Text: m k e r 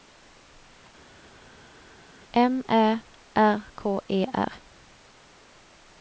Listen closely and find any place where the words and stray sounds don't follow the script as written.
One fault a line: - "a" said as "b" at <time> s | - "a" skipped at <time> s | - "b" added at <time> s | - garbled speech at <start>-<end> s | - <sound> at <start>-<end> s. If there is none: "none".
- "ä r" added at 2.7 s